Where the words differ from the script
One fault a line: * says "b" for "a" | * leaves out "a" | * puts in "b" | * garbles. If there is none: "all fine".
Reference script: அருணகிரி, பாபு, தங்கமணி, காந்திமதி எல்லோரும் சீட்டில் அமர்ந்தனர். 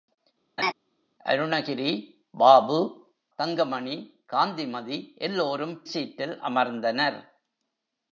all fine